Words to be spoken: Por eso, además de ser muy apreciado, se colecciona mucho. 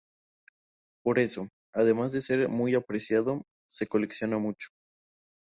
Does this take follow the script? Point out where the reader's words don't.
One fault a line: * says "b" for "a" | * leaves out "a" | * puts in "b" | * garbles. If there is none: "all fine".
all fine